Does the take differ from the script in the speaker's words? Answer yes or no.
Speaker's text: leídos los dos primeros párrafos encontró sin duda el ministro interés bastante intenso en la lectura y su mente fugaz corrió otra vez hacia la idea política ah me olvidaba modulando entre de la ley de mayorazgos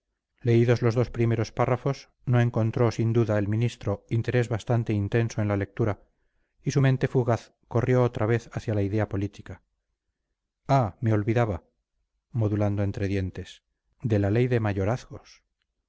yes